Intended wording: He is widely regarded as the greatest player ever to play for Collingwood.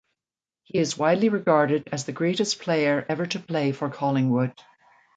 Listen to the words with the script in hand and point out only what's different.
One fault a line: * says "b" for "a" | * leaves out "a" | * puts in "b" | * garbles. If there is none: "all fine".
all fine